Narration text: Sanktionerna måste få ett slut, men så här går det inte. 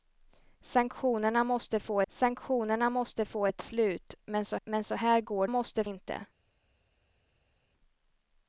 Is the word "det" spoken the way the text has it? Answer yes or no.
no